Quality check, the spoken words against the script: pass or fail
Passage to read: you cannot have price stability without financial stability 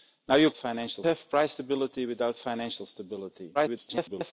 fail